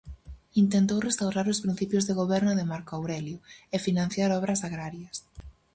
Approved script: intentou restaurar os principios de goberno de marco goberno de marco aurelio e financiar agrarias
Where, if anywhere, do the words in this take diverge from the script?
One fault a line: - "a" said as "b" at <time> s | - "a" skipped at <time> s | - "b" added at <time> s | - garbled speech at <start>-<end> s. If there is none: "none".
- "goberno de marco" skipped at 2.9 s
- "obras" added at 4.4 s